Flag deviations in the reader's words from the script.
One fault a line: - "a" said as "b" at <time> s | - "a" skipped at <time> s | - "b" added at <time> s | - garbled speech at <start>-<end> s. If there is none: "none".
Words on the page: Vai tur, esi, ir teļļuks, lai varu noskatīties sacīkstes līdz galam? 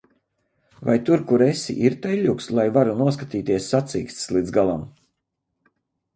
- "kur" added at 1.3 s